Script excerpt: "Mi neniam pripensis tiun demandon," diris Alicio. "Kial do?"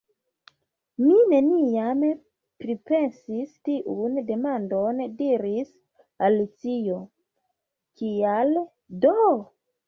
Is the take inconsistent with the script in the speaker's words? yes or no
no